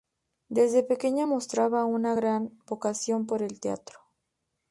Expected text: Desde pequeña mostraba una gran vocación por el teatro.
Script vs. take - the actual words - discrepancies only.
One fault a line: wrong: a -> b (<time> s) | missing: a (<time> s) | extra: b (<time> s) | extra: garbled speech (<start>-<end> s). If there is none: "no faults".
no faults